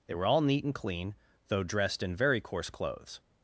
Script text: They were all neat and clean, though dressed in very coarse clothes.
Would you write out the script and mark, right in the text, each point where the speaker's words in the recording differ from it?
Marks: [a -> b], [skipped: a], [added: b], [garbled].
They were all neat and clean, though dressed in very coarse clothes.